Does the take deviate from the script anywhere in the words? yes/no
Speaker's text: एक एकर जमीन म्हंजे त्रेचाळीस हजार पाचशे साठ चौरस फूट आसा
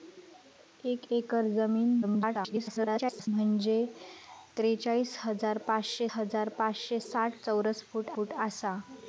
yes